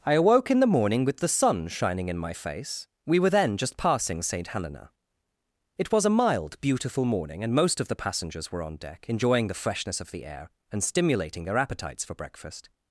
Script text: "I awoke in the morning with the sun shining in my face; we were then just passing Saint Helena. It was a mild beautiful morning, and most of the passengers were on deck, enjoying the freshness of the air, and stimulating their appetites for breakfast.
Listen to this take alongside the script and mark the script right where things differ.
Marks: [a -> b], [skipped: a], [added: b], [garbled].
"I awoke in the morning with the sun shining in my face; we were then just passing Saint Helena. It was a mild beautiful morning, and most of the passengers were on deck, enjoying the freshness of the air, and stimulating their appetites for breakfast.